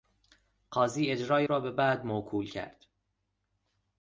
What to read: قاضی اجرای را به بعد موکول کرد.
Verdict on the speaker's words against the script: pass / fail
pass